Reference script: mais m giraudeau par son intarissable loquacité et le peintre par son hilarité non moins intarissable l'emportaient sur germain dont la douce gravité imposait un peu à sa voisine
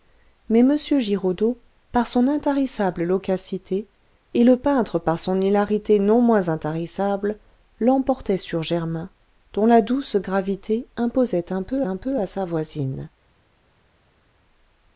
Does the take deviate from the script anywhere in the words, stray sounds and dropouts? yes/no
yes